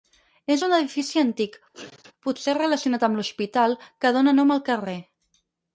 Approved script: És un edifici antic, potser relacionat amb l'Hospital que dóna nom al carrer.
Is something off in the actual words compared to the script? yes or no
no